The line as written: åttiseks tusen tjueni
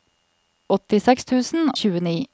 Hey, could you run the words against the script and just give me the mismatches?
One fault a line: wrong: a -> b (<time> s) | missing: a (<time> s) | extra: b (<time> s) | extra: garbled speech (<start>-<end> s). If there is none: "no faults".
no faults